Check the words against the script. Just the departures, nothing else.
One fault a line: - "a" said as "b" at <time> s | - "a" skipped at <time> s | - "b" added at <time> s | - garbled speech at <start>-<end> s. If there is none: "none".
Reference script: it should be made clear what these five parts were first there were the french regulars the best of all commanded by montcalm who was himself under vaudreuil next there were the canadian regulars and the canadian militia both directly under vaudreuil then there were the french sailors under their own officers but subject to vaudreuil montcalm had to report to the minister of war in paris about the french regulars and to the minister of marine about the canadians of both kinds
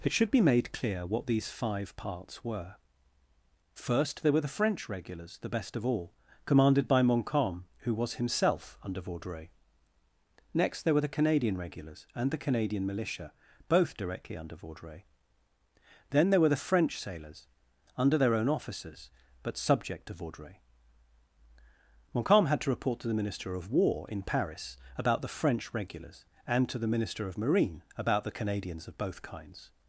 none